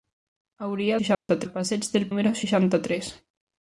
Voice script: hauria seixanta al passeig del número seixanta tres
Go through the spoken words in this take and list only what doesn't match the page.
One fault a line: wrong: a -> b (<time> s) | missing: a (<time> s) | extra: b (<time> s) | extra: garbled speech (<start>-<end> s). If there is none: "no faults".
no faults